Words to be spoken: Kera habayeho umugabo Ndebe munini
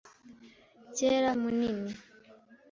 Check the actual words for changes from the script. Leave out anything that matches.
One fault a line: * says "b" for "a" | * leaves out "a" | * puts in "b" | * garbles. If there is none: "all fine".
* leaves out "habayeho umugabo Ndebe"